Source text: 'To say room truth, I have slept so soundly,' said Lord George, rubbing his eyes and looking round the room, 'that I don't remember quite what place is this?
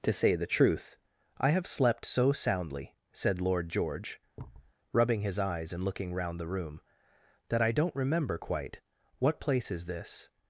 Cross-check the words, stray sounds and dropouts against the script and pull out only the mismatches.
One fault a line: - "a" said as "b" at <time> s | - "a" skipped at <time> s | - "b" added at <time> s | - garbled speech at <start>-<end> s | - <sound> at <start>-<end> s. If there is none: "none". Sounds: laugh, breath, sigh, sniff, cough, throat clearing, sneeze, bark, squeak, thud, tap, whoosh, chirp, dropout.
- "room" said as "the" at 0.3 s
- thud at 4.4-4.7 s